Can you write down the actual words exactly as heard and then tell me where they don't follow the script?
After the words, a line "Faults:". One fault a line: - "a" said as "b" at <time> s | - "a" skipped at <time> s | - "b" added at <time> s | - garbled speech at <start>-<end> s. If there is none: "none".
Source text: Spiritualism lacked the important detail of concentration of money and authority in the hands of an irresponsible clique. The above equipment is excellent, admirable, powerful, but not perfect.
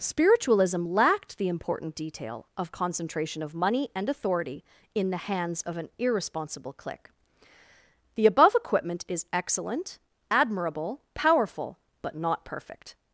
Spiritualism lacked the important detail of concentration of money and authority in the hands of an irresponsible clique. The above equipment is excellent, admirable, powerful, but not perfect.
Faults:
none